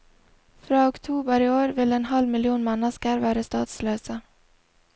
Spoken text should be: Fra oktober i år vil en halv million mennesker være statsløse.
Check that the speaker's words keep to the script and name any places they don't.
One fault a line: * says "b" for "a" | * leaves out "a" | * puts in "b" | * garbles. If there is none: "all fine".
all fine